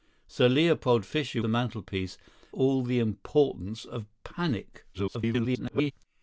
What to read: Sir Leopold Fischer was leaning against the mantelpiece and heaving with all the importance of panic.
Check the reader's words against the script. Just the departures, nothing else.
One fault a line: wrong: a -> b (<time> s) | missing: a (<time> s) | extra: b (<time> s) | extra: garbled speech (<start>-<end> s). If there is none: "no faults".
missing: was leaning against (1.4 s)
missing: and heaving with (2.2 s)
extra: garbled speech (4.9-5.9 s)